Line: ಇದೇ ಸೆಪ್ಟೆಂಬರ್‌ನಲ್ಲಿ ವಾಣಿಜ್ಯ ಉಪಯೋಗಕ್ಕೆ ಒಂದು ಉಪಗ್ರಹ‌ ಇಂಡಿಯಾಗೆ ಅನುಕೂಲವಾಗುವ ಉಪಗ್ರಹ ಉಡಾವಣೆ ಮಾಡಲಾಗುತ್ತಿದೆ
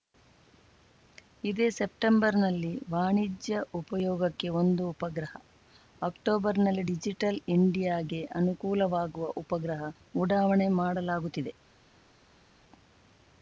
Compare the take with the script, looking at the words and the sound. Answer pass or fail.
fail